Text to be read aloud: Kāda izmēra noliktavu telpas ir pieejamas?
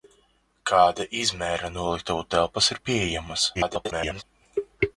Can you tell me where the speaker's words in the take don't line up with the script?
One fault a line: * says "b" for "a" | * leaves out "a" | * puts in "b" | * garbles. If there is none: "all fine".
* garbles